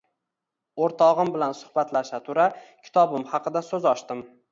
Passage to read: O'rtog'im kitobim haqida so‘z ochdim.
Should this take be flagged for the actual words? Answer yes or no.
yes